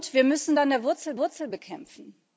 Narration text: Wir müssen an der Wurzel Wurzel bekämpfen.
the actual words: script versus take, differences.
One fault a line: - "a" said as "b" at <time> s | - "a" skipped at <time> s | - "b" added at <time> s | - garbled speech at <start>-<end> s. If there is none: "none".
none